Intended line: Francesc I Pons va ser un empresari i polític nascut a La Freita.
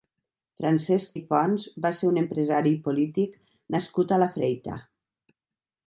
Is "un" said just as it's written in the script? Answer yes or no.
yes